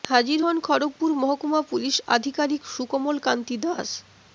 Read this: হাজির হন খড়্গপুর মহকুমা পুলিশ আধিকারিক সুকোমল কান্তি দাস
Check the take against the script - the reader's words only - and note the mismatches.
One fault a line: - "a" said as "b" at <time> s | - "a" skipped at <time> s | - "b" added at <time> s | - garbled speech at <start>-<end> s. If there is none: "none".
none